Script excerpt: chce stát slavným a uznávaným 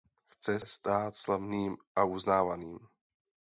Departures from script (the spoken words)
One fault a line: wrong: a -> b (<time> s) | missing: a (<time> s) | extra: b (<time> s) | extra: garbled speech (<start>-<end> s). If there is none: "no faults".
no faults